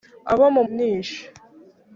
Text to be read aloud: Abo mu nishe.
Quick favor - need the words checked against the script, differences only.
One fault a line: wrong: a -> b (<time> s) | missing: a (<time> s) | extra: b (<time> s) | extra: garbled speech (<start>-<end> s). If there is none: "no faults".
no faults